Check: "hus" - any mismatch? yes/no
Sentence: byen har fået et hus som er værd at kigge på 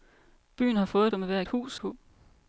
yes